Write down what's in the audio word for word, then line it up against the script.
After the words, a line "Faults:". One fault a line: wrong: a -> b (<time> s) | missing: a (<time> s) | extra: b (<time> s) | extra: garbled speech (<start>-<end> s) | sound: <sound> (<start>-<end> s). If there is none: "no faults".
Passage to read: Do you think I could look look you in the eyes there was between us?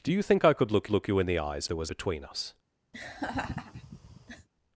Do you think I could look look you in the eyes there was between us?
Faults:
sound: laugh (2.9-4.5 s)